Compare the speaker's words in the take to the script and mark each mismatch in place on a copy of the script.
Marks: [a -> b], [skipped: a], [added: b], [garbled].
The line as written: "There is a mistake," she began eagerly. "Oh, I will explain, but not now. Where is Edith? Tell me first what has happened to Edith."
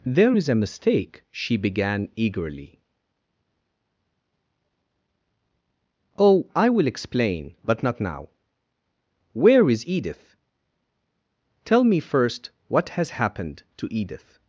"There is a mistake," she began eagerly. "Oh, I will explain, but not now. Where is Edith? Tell me first what has happened to Edith."